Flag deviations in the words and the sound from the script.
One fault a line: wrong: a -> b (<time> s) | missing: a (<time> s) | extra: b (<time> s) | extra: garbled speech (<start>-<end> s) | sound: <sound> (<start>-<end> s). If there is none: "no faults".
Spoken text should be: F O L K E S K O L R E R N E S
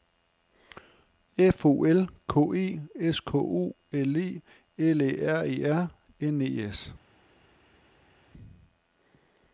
extra: E L Æ (4.2 s)